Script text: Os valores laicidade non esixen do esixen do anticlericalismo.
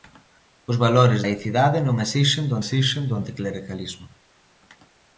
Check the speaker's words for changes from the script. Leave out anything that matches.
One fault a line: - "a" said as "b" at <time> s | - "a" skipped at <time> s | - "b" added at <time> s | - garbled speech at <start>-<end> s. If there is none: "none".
none